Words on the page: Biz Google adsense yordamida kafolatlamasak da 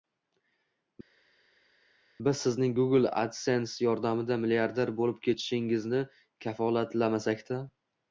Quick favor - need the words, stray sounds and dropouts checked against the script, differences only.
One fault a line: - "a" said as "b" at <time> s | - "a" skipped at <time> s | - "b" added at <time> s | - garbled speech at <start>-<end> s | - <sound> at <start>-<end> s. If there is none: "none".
- "Sizning" added at 2.4 s
- "milliarder bo'lib ketishingizni" added at 4.4 s